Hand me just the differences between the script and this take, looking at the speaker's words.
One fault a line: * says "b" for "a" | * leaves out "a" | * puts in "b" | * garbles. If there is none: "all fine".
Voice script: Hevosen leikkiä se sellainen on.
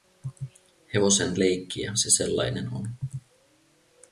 all fine